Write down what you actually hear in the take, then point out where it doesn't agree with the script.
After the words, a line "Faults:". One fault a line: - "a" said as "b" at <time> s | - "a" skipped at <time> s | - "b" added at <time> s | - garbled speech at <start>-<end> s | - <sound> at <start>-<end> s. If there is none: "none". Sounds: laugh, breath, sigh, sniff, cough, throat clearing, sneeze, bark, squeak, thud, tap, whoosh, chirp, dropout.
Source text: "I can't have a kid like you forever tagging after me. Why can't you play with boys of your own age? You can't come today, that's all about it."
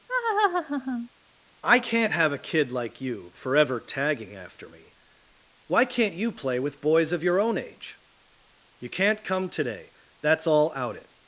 "I can't have a kid like you forever tagging after me. Why can't you play with boys of your own age? You can't come today, that's all out it."
Faults:
- laugh at 0.1-1.1 s
- "about" said as "out" at 10.7 s